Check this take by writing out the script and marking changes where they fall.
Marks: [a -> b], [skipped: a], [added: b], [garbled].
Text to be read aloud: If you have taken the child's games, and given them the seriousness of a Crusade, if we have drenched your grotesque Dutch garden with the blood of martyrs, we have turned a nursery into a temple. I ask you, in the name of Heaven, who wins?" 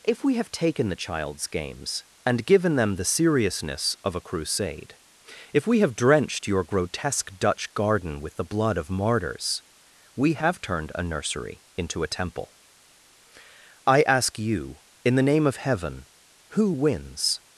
If [you -> we] have taken the child's games, and given them the seriousness of a Crusade, if we have drenched your grotesque Dutch garden with the blood of martyrs, we have turned a nursery into a temple. I ask you, in the name of Heaven, who wins?"